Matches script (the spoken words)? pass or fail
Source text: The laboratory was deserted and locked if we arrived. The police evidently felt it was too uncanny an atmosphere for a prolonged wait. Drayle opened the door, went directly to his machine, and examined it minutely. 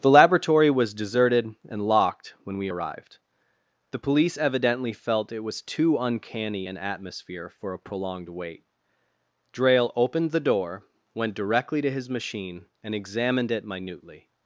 fail